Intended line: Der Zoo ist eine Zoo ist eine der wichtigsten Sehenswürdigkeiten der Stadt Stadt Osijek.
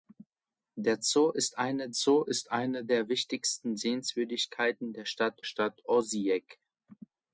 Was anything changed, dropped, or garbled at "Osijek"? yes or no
no